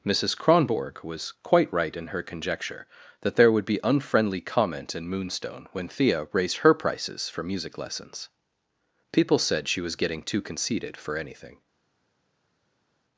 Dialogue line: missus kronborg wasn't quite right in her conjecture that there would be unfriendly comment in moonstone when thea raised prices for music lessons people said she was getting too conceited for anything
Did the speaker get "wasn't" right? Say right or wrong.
wrong